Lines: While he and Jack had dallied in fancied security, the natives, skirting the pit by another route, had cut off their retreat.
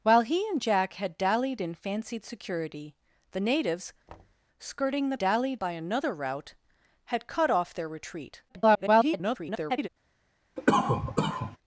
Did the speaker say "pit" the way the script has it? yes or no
no